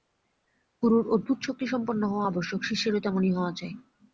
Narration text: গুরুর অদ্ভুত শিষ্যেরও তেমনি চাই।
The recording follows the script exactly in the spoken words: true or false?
false